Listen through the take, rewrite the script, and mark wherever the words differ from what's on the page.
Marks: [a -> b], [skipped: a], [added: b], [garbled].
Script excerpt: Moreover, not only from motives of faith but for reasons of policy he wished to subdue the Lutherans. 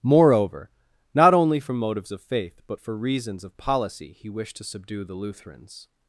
Moreover, not only from motives of faith but for reasons of policy he wished to subdue the Lutherans.